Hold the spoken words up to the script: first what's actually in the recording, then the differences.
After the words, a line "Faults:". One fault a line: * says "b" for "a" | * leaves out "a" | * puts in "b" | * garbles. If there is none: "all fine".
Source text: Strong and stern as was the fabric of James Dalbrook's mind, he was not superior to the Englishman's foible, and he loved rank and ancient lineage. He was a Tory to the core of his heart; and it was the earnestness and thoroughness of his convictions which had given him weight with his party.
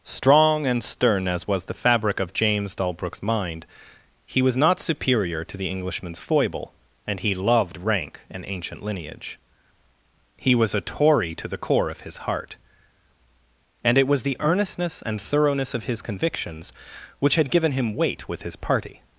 Strong and stern as was the fabric of James Dalbrook's mind, he was not superior to the Englishman's foible, and he loved rank and ancient lineage. He was a Tory to the core of his heart; and it was the earnestness and thoroughness of his convictions which had given him weight with his party.
Faults:
all fine